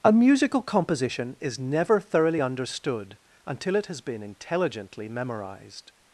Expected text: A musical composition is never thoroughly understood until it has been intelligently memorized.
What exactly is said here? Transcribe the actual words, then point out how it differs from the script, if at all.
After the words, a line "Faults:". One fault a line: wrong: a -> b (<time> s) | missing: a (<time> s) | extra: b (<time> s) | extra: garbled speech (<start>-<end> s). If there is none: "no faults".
A musical composition is never thoroughly understood until it has been intelligently memorized.
Faults:
no faults